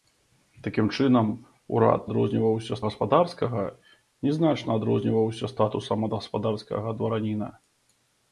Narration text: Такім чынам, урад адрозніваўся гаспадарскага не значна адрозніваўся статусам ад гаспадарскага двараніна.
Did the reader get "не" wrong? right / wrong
right